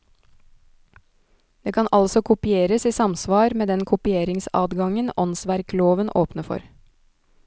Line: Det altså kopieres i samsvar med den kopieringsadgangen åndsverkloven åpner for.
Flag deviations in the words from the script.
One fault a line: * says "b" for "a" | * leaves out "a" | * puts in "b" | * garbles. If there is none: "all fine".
* puts in "kan"